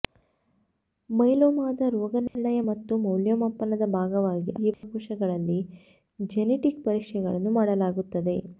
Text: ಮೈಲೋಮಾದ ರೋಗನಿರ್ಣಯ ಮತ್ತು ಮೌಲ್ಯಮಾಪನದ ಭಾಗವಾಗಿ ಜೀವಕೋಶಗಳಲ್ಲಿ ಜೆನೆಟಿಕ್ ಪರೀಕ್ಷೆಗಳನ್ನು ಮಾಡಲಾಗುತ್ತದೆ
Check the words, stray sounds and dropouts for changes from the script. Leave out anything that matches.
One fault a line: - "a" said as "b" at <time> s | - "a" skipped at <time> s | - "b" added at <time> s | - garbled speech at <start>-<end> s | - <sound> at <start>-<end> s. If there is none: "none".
- dropout at 2.3-2.4 s
- dropout at 4.7-4.8 s